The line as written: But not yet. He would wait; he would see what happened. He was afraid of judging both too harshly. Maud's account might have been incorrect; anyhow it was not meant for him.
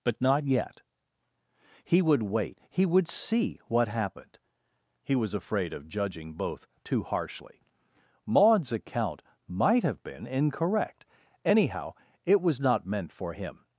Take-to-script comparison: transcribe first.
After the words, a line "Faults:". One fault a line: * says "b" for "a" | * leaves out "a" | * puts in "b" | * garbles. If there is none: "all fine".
But not yet. He would wait; he would see what happened. He was afraid of judging both too harshly. Maud's account might have been incorrect; anyhow it was not meant for him.
Faults:
all fine